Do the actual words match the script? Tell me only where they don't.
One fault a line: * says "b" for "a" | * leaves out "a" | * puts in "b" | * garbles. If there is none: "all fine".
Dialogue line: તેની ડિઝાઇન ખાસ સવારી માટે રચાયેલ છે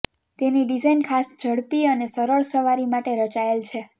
* puts in "ઝડપી અને સરળ"